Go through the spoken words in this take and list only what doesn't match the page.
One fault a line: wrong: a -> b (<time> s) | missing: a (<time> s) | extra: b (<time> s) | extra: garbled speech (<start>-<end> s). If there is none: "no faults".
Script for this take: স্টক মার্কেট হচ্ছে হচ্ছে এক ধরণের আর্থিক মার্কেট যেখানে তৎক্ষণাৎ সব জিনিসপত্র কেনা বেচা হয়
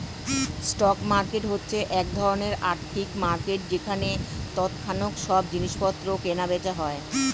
missing: হচ্ছে (1.8 s)